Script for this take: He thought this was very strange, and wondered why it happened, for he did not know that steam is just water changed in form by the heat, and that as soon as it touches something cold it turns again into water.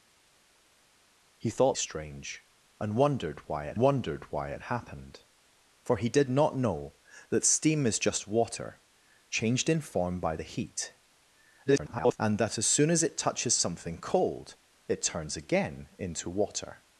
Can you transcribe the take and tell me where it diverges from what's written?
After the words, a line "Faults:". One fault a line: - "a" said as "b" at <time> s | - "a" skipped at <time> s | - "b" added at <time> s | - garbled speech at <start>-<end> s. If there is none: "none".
He thought strange, and wondered why it wondered why it happened, for he did not know that steam is just water changed in form by the heat, [garbled] and that as soon as it touches something cold it turns again into water.
Faults:
- "this was very strange and" said as "strange and wondered why it" at 1.7 s
- garbled speech at 11.7-12.2 s